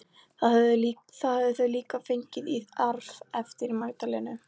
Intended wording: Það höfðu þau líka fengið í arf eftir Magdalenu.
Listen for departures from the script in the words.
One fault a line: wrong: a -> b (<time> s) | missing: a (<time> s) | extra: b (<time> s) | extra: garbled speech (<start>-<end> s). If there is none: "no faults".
no faults